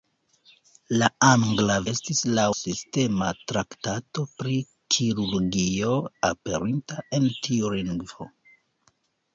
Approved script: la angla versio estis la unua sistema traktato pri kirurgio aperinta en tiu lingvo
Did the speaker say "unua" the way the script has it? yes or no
no